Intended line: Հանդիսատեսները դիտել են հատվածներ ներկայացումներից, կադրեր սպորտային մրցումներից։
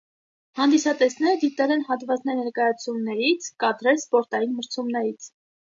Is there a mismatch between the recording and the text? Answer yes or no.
no